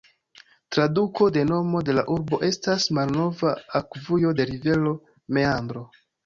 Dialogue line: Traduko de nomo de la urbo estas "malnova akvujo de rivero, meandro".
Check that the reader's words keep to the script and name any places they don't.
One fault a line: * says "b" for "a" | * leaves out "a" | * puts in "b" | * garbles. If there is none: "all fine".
all fine